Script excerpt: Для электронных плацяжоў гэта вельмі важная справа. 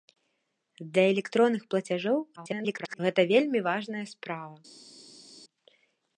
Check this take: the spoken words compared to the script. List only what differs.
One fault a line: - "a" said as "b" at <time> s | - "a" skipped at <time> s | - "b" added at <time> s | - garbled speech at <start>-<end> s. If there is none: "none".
- garbled speech at 2.4-3.0 s